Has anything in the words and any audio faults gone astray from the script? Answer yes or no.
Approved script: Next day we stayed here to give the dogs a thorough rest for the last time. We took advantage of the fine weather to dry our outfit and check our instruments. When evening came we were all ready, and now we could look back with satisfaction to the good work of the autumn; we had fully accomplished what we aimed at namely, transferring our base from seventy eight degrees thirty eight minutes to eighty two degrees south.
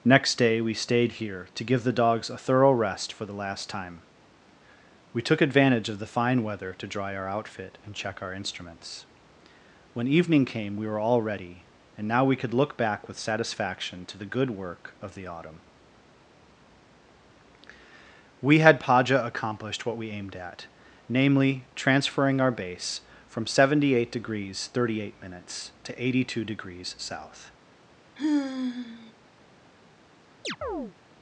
yes